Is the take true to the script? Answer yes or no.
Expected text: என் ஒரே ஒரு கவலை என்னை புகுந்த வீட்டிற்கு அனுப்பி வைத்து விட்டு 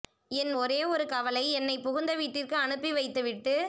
yes